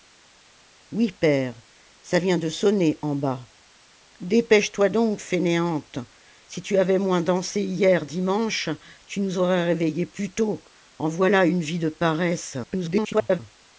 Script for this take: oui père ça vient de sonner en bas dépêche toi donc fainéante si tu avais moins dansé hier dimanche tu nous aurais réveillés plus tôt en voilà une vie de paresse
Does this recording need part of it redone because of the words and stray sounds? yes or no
yes